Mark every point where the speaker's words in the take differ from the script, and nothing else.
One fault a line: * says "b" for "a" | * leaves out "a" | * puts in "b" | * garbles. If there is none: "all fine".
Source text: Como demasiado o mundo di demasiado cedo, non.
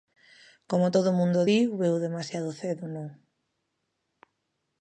* says "todo" for "demasiado"
* puts in "veu"